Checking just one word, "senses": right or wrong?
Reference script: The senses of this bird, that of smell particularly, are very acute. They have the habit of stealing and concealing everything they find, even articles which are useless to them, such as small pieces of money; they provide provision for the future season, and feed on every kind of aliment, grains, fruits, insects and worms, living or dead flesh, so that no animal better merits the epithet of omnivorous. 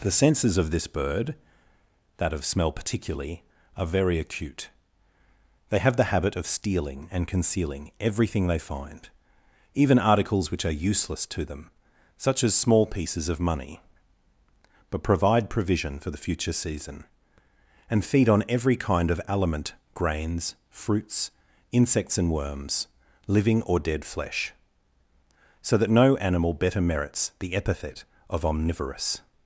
right